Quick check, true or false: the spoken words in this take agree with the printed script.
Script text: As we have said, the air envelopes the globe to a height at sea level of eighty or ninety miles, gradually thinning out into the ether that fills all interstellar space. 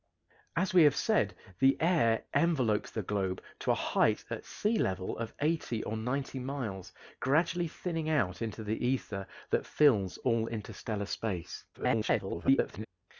false